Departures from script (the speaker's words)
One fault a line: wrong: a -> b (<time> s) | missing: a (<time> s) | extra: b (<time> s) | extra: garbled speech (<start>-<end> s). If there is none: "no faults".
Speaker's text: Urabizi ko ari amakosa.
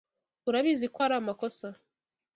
no faults